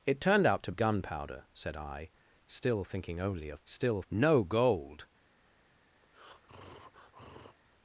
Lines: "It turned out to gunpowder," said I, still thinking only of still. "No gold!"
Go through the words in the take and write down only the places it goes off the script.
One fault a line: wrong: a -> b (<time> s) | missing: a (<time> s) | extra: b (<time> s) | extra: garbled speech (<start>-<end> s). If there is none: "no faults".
no faults